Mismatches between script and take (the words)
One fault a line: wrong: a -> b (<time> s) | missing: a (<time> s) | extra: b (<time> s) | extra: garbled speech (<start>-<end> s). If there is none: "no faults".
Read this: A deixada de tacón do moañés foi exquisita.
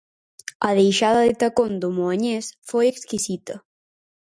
no faults